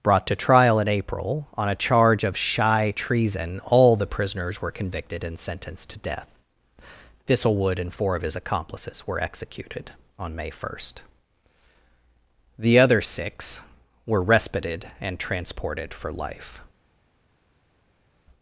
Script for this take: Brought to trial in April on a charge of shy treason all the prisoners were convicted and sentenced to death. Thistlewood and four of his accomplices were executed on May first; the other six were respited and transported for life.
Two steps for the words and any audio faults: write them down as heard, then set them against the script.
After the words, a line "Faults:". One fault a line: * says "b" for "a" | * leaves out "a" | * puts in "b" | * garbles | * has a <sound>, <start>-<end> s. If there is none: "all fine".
Brought to trial in April on a charge of shy treason all the prisoners were convicted and sentenced to death. Thistlewood and four of his accomplices were executed on May first; the other six were respited and transported for life.
Faults:
all fine